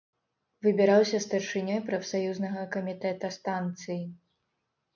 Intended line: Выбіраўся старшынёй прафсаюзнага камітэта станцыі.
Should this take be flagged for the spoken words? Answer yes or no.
no